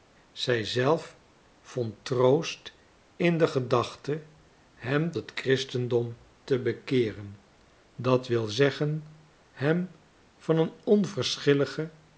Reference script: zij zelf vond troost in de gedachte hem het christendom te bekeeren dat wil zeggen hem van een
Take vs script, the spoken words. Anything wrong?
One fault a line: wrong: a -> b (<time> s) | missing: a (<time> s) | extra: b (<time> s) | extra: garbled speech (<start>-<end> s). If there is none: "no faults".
no faults